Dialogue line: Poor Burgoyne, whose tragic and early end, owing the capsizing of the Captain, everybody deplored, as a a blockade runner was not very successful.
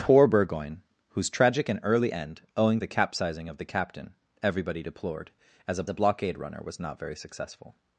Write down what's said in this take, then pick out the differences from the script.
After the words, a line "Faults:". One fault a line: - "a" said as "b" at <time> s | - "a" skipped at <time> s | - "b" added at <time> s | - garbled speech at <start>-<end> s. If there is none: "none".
Poor Burgoyne, whose tragic and early end, owing the capsizing of the Captain, everybody deplored, as a a blockade runner was not very successful.
Faults:
none